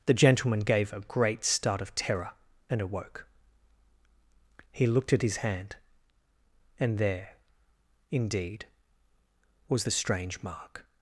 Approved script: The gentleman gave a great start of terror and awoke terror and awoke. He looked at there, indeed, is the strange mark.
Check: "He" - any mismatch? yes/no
yes